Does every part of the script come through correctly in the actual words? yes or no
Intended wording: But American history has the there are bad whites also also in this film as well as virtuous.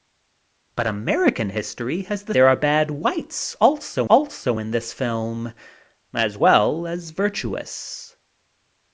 yes